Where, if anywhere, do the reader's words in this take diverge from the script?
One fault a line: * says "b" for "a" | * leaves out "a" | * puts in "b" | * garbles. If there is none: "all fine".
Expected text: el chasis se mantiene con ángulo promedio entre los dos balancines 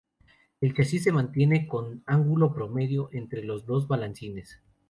all fine